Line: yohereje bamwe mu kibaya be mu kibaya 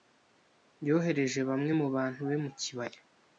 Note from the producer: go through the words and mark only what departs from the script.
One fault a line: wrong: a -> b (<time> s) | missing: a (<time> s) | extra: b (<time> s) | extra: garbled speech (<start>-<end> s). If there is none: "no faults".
wrong: kibaya -> bantu (2.0 s)